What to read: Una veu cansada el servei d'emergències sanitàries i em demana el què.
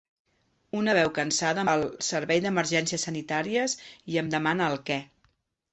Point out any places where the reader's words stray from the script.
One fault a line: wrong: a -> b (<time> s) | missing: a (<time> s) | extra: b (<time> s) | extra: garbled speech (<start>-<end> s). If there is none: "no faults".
no faults